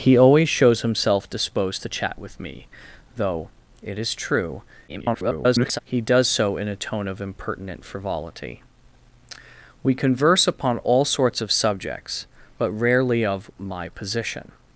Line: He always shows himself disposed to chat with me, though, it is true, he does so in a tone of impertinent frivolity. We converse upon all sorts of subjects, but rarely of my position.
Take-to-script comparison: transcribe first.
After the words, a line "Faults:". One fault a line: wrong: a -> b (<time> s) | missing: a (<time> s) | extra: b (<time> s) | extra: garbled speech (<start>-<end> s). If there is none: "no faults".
He always shows himself disposed to chat with me, though, it is true, [garbled] he does so in a tone of impertinent frivolity. We converse upon all sorts of subjects, but rarely of my position.
Faults:
extra: garbled speech (4.9-5.8 s)